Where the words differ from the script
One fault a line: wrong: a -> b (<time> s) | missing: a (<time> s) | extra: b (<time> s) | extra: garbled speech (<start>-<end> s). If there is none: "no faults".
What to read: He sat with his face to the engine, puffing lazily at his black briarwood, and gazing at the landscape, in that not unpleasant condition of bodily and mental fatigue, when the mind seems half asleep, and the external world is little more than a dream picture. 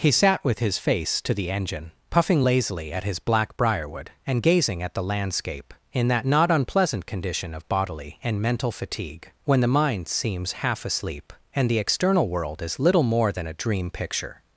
no faults